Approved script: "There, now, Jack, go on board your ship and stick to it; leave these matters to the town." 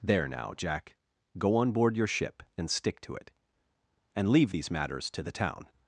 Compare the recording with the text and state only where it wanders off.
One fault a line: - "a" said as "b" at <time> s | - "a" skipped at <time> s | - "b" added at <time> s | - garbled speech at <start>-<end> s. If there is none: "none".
- "and" added at 4.2 s